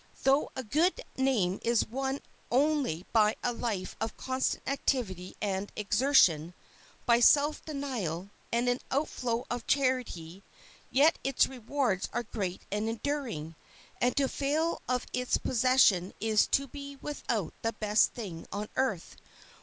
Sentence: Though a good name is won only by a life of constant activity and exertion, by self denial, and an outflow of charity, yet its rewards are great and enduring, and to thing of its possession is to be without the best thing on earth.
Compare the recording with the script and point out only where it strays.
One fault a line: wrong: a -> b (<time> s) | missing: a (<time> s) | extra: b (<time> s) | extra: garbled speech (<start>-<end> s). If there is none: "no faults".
wrong: thing -> fail (14.3 s)